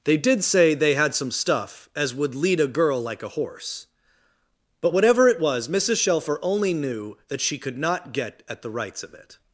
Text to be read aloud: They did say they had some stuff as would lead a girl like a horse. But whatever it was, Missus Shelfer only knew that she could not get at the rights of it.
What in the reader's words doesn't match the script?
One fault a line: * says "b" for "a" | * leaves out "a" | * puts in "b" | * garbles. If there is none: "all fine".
all fine